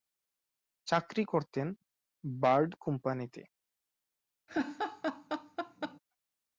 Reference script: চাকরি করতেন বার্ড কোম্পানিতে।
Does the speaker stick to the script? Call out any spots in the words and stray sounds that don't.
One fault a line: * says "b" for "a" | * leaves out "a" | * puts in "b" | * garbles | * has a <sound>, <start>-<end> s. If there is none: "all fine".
* has a laugh, 4.5-6.0 s